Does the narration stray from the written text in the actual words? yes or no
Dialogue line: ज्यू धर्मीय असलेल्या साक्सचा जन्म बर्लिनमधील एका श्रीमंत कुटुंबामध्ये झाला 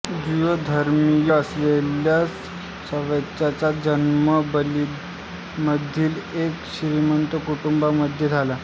no